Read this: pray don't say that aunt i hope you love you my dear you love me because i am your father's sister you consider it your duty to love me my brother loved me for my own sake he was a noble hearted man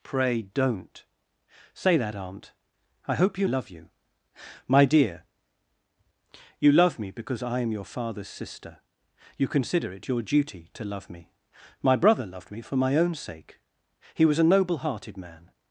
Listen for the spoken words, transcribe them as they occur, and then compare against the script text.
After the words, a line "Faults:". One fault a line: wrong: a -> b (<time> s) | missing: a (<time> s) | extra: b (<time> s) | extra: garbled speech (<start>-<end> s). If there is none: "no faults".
pray don't say that aunt i hope you love you my dear you love me because i am your father's sister you consider it your duty to love me my brother loved me for my own sake he was a noble hearted man
Faults:
no faults